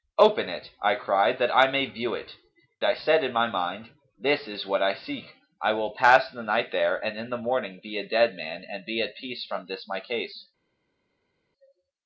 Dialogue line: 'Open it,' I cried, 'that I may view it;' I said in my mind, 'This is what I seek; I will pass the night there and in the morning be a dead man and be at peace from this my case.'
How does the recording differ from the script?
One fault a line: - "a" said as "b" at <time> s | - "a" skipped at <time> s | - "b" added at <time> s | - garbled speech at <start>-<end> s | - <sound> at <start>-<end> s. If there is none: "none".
none